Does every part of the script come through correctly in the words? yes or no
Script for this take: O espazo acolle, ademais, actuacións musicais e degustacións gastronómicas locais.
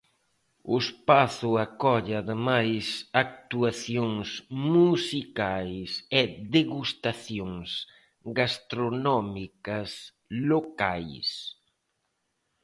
yes